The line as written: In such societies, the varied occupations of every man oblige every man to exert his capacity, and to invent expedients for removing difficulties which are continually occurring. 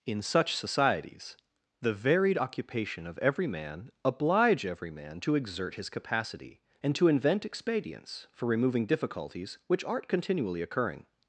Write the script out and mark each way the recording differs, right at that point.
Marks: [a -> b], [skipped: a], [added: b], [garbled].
In such societies, the varied [occupations -> occupation] of every man oblige every man to exert his capacity, and to invent expedients for removing difficulties which [are -> aren't] continually occurring.